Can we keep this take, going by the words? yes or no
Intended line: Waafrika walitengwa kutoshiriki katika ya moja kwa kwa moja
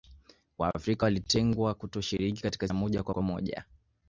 yes